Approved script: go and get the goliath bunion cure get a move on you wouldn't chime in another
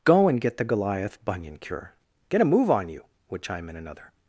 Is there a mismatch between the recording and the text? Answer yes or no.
yes